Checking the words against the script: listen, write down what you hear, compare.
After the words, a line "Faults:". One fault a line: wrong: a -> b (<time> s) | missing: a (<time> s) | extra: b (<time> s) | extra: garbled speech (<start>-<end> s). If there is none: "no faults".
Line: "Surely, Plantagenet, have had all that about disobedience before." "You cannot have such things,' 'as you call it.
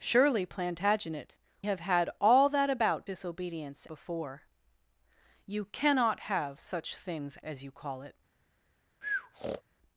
"Surely, Plantagenet, have had all that about disobedience before." "You cannot have such things,' 'as you call it.
Faults:
no faults